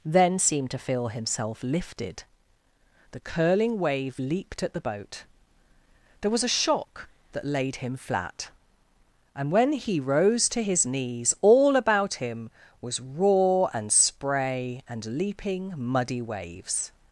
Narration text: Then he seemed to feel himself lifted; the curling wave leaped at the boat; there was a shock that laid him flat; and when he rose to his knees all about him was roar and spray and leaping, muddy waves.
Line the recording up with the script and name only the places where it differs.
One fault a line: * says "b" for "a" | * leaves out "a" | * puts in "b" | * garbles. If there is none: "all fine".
* leaves out "he"